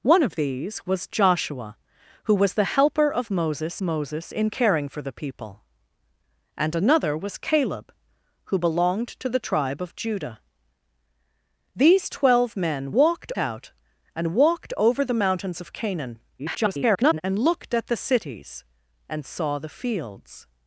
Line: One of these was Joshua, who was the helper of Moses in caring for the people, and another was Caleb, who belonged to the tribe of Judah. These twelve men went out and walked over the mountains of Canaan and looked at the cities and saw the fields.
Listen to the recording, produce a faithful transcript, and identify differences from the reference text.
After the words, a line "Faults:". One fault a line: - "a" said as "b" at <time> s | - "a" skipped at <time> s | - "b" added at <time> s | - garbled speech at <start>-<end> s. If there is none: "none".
One of these was Joshua, who was the helper of Moses Moses in caring for the people, and another was Caleb, who belonged to the tribe of Judah. These twelve men walked out and walked over the mountains of Canaan [garbled] and looked at the cities and saw the fields.
Faults:
- "Moses" added at 3.8 s
- "went" said as "walked" at 12.9 s
- garbled speech at 16.4-17.2 s